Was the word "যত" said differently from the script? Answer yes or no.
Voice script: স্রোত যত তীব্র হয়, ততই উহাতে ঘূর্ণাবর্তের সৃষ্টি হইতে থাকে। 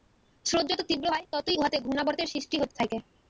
no